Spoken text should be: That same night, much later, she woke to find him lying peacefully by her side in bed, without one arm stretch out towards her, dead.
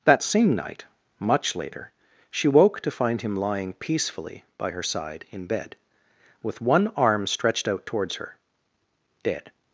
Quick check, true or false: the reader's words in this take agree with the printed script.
false